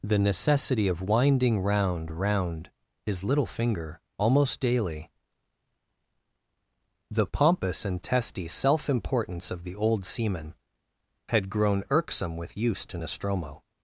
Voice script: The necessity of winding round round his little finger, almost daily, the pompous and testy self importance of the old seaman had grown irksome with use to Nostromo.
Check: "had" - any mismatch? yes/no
no